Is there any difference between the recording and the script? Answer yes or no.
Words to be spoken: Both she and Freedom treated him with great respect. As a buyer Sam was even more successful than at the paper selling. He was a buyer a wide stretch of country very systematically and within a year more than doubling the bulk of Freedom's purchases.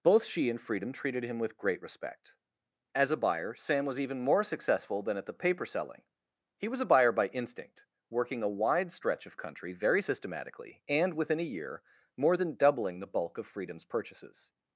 yes